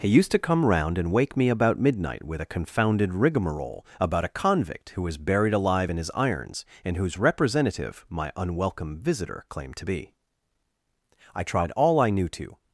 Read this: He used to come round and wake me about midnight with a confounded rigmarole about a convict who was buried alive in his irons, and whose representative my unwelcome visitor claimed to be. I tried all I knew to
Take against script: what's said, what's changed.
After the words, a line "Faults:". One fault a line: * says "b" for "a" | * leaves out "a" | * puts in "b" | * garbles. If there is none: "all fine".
He used to come round and wake me about midnight with a confounded rigmarole about a convict who was buried alive in his irons, and whose representative my unwelcome visitor claimed to be. I tried all I knew to
Faults:
all fine